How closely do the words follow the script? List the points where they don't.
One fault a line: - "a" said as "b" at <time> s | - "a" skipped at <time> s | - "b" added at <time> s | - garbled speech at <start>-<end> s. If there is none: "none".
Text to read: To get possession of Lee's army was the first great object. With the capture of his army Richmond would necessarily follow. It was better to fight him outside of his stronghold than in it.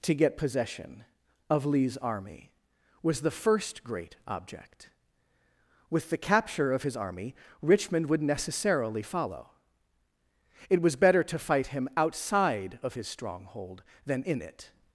none